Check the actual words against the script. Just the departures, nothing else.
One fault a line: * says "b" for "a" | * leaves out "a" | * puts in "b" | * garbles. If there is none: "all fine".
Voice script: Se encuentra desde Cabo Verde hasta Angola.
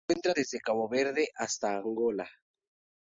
all fine